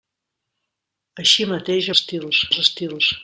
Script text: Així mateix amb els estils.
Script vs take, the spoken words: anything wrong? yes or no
yes